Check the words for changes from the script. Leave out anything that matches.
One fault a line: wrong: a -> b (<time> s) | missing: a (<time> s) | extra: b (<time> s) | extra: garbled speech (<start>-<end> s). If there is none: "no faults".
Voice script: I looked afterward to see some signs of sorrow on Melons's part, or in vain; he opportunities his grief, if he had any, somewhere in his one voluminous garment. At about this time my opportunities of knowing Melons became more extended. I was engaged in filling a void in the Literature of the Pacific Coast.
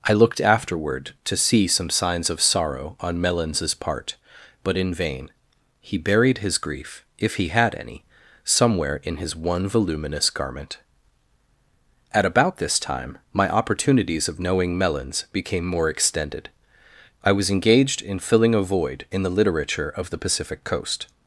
wrong: or -> but (4.6 s)
wrong: opportunities -> buried (6.0 s)